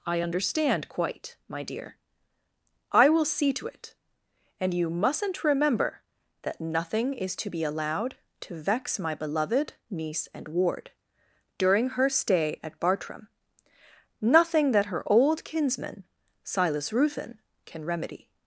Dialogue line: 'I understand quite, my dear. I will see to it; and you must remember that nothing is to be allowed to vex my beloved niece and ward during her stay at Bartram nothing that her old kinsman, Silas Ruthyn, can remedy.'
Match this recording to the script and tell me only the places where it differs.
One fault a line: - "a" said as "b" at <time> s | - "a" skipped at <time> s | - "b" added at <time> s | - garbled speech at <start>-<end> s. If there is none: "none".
- "must" said as "mustn't" at 4.9 s